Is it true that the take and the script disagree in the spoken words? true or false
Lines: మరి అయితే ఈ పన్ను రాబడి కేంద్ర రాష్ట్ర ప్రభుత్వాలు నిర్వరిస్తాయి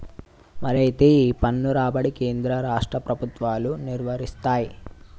false